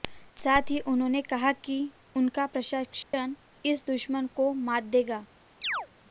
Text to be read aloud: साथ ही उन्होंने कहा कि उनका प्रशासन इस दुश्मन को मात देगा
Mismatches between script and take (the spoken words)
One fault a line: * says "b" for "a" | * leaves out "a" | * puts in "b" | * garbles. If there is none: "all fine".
all fine